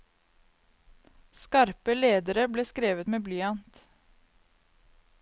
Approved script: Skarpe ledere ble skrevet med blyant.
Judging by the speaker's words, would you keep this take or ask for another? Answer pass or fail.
pass